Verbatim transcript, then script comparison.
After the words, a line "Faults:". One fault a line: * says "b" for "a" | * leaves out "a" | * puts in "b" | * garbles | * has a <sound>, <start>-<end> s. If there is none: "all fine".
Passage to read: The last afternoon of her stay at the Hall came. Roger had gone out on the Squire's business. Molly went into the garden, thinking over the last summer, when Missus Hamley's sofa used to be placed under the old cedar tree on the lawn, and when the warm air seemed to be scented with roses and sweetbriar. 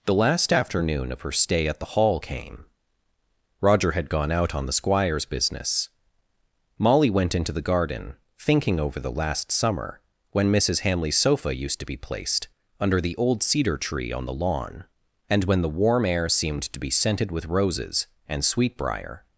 The last afternoon of her stay at the Hall came. Roger had gone out on the Squire's business. Molly went into the garden, thinking over the last summer, when Missus Hamley's sofa used to be placed under the old cedar tree on the lawn, and when the warm air seemed to be scented with roses and sweetbriar.
Faults:
all fine